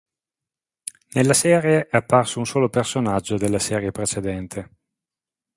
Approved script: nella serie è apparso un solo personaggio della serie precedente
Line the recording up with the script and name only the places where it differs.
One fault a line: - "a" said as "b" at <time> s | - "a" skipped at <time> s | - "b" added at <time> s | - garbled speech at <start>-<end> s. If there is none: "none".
none